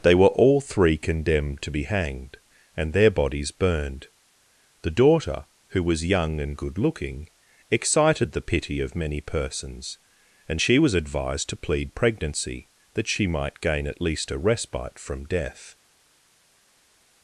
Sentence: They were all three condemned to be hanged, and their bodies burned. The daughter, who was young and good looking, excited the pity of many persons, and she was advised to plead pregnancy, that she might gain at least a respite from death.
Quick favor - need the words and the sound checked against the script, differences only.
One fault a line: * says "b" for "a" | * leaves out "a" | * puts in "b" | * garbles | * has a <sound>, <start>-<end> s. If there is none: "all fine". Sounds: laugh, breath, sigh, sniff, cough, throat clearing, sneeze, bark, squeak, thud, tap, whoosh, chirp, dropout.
all fine